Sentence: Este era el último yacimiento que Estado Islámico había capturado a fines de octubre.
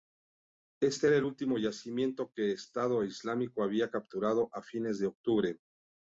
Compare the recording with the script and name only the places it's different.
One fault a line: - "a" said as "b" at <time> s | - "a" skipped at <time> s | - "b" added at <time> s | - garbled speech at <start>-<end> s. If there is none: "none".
none